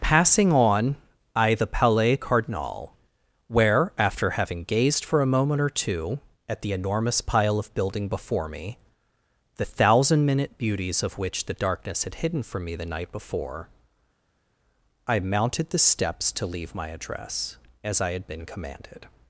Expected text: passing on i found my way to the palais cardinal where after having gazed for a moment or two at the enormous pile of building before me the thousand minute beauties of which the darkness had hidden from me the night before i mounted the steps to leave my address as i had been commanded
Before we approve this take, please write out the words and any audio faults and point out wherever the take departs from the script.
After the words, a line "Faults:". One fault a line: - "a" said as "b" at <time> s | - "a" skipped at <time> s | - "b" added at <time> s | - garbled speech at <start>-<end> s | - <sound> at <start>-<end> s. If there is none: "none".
passing on i the palais cardinal where after having gazed for a moment or two at the enormous pile of building before me the thousand minute beauties of which the darkness had hidden from me the night before i mounted the steps to leave my address as i had been commanded
Faults:
- "found my way to" skipped at 1.6 s